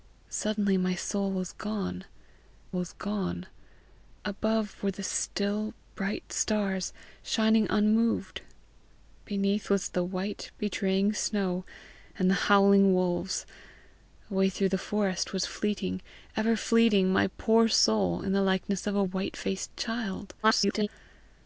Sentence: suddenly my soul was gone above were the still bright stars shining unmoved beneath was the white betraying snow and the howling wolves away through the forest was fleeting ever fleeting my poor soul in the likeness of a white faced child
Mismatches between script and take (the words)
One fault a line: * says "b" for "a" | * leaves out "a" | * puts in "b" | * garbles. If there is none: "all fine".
* puts in "was gone"
* garbles